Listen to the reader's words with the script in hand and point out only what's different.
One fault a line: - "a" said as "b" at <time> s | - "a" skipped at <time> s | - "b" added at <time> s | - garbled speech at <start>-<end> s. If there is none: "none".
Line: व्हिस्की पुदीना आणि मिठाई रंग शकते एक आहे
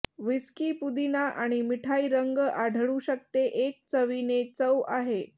- "आढळू" added at 2.4 s
- "चवीने चव" added at 3.9 s